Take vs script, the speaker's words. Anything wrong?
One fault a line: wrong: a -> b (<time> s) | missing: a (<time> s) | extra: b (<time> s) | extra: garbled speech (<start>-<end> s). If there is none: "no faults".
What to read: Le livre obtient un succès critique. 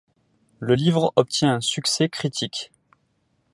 no faults